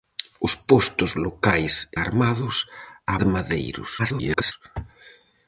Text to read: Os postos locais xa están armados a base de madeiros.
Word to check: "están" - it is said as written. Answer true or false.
false